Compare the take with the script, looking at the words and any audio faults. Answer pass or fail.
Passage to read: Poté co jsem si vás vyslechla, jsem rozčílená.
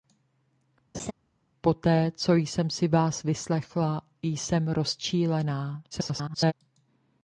fail